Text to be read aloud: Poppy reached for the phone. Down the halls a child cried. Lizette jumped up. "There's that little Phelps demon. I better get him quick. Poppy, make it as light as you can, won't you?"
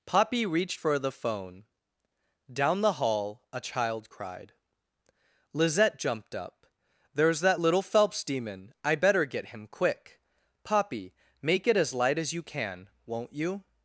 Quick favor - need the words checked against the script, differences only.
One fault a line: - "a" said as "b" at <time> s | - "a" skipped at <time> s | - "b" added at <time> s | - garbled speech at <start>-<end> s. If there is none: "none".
- "halls" said as "hall" at 2.9 s